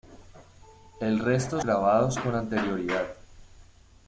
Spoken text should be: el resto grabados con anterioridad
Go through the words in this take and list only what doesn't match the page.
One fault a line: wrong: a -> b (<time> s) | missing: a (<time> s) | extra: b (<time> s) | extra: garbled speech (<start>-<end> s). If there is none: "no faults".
no faults